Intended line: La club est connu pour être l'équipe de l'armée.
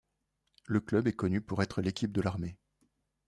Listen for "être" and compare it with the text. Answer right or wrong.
right